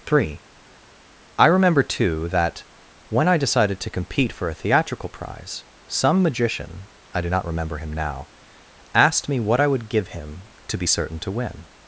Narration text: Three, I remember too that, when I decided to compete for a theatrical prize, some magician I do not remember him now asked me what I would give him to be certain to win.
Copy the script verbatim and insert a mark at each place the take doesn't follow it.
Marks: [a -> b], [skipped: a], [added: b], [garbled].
Three, I remember too that, when I decided to compete for a theatrical prize, some magician I do not remember him now asked me what I would give him to be certain to win.